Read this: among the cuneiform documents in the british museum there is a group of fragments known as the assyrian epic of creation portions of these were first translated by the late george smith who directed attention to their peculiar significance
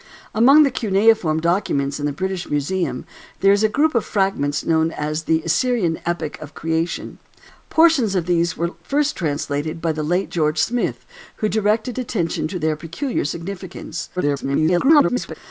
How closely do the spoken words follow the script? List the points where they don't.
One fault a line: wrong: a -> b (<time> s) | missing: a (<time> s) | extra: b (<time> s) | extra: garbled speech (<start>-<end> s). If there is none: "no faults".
extra: garbled speech (14.2-15.4 s)